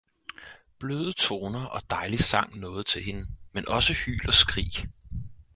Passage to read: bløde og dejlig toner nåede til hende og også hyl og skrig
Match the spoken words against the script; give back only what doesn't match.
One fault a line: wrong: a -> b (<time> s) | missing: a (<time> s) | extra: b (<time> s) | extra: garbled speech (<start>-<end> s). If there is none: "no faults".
extra: toner (1.1 s)
wrong: toner -> sang (2.2 s)
wrong: og -> men (3.5 s)